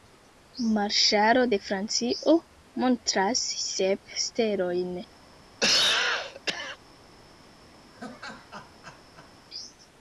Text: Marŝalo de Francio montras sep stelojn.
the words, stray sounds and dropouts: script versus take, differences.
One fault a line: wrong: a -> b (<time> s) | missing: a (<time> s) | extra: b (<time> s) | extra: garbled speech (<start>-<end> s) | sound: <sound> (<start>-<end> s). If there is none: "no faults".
sound: cough (5.6-6.8 s)
sound: laugh (7.9-9.3 s)